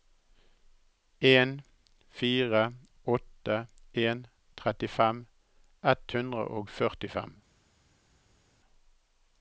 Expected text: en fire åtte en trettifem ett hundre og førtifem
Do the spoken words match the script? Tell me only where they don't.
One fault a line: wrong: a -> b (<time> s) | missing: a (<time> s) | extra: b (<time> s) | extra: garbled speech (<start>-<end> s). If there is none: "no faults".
no faults